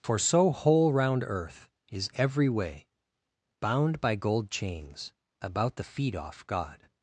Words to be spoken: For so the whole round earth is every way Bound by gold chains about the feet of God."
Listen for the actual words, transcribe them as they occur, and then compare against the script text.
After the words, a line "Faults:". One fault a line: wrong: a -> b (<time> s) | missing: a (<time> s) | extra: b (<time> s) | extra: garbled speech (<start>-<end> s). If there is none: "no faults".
For so whole round earth is every way Bound by gold chains about the feet off God."
Faults:
missing: the (0.5 s)
wrong: of -> off (6.1 s)